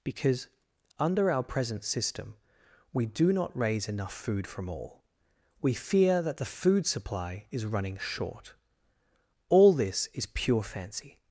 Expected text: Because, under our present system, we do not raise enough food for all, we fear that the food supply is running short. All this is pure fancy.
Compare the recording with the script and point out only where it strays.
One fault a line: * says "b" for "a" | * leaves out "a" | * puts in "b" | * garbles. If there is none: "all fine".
* says "from" for "for"